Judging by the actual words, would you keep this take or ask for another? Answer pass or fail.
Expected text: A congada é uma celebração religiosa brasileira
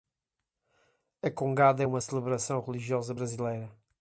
pass